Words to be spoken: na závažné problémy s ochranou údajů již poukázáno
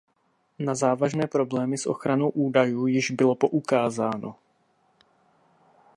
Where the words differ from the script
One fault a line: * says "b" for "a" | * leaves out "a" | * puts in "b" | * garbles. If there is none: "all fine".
* puts in "bylo"